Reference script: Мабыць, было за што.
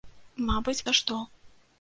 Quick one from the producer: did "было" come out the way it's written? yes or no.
no